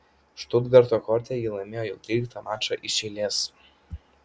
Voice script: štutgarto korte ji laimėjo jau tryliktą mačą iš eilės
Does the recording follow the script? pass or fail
pass